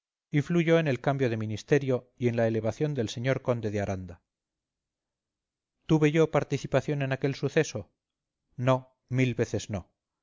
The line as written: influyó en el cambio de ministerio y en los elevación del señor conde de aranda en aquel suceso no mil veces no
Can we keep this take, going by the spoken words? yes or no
no